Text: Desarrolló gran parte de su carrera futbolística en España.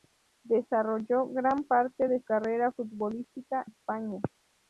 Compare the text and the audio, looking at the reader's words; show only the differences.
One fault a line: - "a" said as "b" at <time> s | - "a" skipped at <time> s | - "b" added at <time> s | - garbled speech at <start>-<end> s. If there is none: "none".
- "su" skipped at 2.2 s
- "en" skipped at 3.6 s